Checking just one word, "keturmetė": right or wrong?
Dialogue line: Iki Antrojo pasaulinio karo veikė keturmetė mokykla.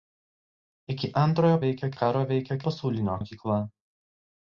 wrong